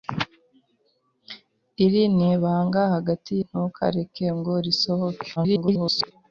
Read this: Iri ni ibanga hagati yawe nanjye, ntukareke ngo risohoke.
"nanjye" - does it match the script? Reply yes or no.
no